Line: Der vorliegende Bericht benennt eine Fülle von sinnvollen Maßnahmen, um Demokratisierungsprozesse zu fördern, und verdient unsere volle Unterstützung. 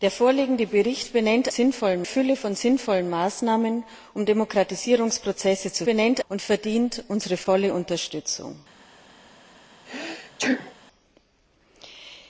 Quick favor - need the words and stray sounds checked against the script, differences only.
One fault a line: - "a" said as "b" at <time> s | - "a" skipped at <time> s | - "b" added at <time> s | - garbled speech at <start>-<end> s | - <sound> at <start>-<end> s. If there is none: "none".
- "eine" said as "sinnvollen" at 1.5 s
- "fördern" said as "benennt" at 5.9 s
- sneeze at 9.9-10.7 s